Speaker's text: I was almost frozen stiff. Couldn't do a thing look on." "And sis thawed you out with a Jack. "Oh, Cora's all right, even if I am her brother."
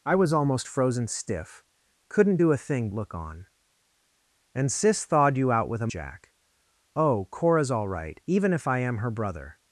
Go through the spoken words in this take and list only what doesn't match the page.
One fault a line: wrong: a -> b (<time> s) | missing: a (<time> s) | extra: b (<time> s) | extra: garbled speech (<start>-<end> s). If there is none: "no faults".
no faults